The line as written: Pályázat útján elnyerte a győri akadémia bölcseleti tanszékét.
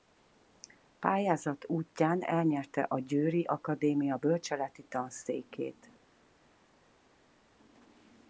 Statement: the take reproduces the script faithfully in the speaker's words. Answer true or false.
true